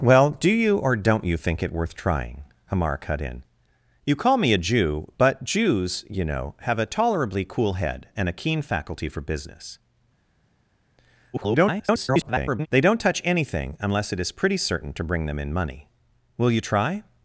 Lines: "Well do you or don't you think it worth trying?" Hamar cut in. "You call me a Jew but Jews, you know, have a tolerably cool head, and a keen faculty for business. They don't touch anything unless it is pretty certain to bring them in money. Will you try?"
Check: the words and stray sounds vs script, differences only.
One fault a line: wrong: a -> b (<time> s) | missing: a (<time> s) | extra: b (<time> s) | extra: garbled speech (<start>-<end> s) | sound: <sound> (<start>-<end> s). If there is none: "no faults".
extra: garbled speech (11.3-12.7 s)